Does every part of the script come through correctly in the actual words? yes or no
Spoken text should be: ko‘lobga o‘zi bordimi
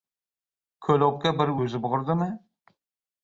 no